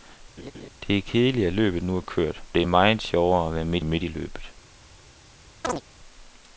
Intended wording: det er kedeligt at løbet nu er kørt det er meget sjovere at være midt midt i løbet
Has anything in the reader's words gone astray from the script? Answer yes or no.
no